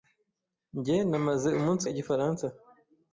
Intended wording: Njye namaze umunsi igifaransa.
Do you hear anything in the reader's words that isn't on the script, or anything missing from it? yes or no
no